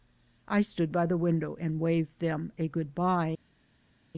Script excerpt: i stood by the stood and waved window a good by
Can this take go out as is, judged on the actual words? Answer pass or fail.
fail